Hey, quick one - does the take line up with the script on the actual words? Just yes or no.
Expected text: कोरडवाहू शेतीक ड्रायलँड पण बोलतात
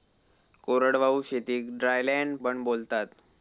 yes